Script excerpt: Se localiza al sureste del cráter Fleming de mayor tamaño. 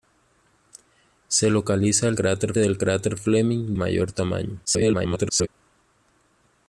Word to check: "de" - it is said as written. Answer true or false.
false